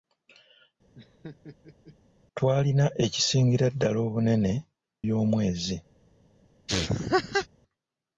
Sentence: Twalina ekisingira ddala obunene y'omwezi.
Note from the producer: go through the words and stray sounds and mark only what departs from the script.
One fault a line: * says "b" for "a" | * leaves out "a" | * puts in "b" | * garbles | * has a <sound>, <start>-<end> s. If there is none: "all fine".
* has a laugh, 0.9-2.0 s
* has a laugh, 6.7-7.5 s